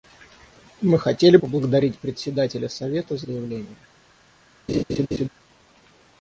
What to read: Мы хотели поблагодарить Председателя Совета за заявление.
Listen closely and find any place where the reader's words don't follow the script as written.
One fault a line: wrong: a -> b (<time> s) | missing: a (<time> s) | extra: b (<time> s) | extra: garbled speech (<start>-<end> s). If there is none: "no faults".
no faults